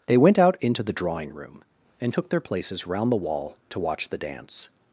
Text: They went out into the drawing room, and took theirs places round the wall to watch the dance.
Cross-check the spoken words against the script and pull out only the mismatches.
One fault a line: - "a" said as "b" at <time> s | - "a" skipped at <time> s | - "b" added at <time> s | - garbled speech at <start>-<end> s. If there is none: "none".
- "theirs" said as "their" at 2.3 s